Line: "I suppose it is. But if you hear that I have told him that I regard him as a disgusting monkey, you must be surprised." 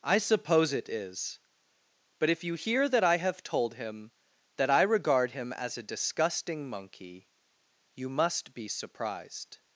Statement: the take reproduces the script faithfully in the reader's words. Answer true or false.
true